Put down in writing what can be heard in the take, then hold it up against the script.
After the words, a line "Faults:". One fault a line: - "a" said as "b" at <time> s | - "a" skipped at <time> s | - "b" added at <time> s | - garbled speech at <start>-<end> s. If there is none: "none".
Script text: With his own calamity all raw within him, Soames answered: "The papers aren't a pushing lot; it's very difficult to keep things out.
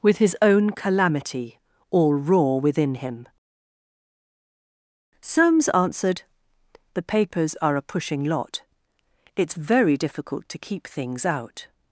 With his own calamity all raw within him, Soames answered: "The papers are a pushing lot; it's very difficult to keep things out.
Faults:
- "aren't" said as "are" at 7.6 s